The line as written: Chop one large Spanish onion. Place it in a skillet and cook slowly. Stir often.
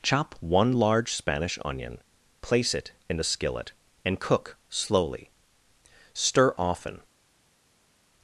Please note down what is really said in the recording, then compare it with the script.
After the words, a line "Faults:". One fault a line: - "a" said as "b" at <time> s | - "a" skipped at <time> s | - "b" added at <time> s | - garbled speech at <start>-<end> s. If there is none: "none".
Chop one large Spanish onion. Place it in a skillet and cook slowly. Stir often.
Faults:
none